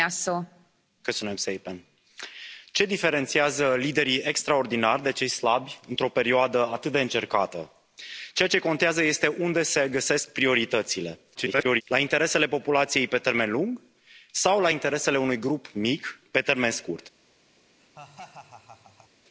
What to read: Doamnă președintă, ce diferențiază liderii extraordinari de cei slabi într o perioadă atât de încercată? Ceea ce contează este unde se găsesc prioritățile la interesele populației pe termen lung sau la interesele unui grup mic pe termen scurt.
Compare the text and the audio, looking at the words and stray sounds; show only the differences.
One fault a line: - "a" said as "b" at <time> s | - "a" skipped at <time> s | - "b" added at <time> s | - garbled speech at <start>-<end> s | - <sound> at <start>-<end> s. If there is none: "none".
- garbled speech at 11.3-11.8 s
- laugh at 17.8-19.1 s